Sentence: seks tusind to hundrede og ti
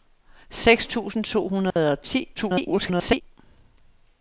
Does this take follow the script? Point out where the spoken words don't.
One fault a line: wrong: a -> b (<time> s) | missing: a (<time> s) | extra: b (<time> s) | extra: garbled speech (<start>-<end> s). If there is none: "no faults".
extra: garbled speech (2.3-3.2 s)